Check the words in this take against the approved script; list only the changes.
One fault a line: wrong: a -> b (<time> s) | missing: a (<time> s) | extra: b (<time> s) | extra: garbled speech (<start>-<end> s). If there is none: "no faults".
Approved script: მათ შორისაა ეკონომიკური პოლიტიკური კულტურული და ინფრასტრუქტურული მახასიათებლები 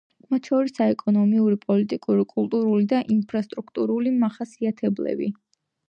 no faults